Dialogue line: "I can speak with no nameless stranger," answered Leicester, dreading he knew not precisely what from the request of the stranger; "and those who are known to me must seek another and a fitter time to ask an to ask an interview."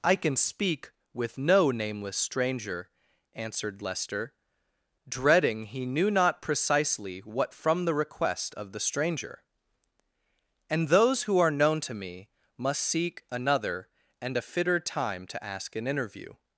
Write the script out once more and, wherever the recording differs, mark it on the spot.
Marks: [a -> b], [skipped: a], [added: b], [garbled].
"I can speak with no nameless stranger," answered Leicester, dreading he knew not precisely what from the request of the stranger; "and those who are known to me must seek another and a fitter time to ask an [skipped: to ask an] interview."